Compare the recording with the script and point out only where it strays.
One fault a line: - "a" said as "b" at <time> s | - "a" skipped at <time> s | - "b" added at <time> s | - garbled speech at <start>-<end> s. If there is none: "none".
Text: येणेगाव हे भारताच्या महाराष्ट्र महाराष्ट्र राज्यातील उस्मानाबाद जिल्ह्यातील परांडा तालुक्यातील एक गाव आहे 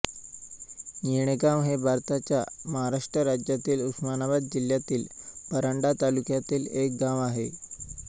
- "महाराष्ट्र" skipped at 3.2 s